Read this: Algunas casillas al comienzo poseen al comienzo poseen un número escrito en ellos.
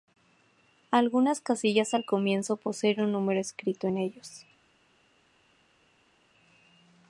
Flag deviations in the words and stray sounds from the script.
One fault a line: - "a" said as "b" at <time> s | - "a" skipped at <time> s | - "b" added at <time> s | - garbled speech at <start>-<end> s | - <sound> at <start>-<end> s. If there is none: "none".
- "al comienzo poseen" skipped at 3.0 s